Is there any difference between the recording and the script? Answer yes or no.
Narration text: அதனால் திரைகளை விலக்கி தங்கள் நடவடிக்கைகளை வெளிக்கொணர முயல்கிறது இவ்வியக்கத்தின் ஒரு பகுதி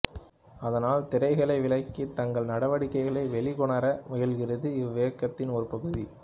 no